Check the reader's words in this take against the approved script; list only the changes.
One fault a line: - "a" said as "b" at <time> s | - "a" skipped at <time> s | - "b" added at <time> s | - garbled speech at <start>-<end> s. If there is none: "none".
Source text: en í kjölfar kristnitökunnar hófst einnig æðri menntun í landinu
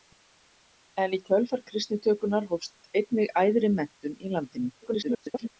- garbled speech at 4.8-5.5 s